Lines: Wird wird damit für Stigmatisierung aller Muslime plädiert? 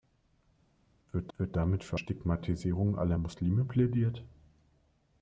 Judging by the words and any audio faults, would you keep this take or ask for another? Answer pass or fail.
pass